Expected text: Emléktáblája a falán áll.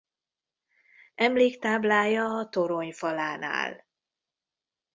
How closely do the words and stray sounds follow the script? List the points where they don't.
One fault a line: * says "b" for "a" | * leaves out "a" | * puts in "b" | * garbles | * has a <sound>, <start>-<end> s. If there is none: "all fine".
* puts in "torony"